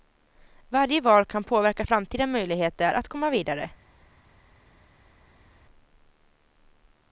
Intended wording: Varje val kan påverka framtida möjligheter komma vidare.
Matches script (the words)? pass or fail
fail